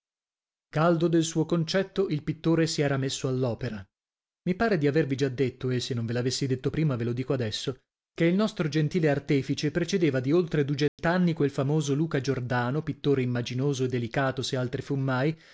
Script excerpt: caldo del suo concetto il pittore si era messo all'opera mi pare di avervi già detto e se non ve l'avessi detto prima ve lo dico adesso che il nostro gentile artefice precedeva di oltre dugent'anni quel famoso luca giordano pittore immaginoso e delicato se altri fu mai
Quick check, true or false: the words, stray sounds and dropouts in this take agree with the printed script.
false